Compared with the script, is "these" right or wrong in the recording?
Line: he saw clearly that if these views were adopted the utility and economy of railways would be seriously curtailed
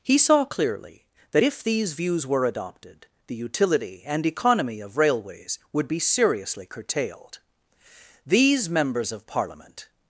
right